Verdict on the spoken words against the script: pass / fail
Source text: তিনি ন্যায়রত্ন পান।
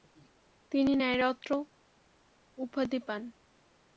fail